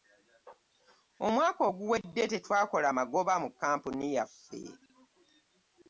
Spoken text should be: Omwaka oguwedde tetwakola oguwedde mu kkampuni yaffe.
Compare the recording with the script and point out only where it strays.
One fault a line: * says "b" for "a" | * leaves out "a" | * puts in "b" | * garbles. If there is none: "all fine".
* says "magoba" for "oguwedde"